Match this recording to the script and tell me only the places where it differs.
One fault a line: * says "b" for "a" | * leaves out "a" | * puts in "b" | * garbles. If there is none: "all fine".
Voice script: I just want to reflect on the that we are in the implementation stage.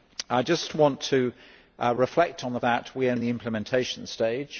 all fine